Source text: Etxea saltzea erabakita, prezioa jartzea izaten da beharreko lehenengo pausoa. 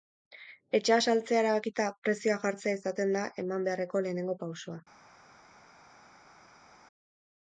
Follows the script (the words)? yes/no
no